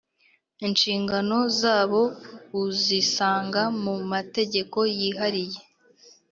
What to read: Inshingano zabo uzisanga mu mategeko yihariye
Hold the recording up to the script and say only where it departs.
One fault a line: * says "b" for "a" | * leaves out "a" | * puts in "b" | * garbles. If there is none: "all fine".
all fine